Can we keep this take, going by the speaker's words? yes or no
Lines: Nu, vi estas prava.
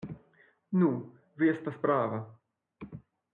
yes